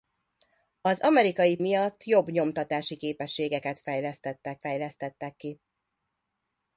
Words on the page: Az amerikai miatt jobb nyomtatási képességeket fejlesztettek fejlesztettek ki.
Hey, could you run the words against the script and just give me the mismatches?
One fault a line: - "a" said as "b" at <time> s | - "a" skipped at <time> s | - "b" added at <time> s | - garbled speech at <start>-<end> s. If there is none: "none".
none